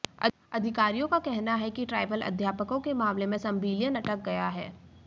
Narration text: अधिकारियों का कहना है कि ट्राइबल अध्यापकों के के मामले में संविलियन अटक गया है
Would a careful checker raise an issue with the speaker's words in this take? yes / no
yes